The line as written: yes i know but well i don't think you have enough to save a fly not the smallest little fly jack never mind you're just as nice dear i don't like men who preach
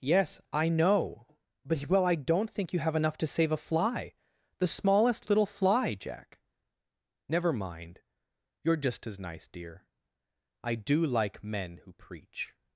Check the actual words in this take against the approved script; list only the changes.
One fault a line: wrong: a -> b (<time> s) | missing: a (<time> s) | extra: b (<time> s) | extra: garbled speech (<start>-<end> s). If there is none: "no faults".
missing: not (4.1 s)
wrong: don't -> do (10.8 s)